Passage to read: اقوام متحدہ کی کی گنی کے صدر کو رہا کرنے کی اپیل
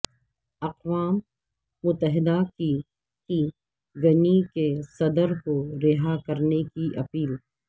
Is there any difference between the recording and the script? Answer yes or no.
no